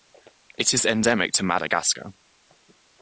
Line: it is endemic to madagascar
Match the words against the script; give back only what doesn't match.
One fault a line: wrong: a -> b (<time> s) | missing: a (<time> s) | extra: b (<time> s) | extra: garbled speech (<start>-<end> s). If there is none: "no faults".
no faults